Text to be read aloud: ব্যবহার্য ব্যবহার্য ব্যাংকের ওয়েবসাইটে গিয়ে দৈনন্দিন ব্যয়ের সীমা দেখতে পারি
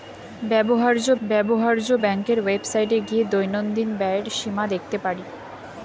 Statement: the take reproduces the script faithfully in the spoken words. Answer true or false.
true